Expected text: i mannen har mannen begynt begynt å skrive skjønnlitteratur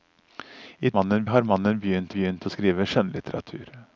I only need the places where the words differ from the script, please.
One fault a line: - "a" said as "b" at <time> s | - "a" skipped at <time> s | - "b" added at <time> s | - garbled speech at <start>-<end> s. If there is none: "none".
none